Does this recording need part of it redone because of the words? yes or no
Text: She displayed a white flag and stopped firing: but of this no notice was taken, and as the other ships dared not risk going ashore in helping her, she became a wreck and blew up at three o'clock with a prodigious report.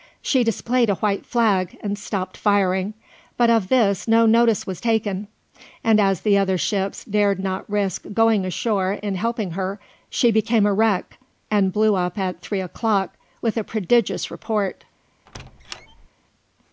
no